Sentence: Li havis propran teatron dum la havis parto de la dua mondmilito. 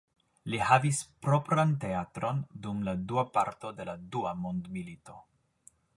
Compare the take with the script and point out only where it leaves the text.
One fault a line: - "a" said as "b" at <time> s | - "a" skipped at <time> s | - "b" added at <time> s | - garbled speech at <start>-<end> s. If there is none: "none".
- "havis" said as "dua" at 3.1 s